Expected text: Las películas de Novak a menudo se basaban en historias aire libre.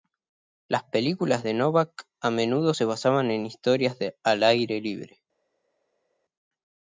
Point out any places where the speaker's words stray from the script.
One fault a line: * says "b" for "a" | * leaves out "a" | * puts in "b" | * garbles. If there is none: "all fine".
* puts in "al"